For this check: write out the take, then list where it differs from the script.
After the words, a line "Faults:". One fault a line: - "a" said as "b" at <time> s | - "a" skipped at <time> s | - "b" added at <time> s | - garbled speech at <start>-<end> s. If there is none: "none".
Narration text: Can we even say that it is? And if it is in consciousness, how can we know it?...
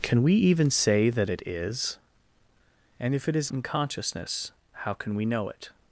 Can we even say that it is? And if it is in consciousness, how can we know it?...
Faults:
none